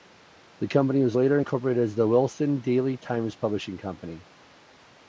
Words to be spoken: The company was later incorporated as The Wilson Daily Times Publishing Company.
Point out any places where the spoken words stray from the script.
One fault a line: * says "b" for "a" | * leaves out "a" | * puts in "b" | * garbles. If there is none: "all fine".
all fine